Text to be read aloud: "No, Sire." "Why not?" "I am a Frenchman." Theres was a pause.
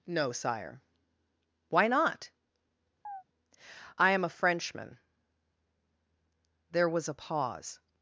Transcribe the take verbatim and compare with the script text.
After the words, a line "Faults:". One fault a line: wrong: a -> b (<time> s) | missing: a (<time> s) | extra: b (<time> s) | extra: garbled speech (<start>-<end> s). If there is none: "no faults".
"No, Sire." "Why not?" "I am a Frenchman." There was a pause.
Faults:
wrong: Theres -> There (6.7 s)